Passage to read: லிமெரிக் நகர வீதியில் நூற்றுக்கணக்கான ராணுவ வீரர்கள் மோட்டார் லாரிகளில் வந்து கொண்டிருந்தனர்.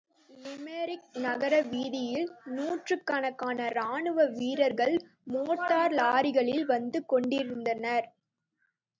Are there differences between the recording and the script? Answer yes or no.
no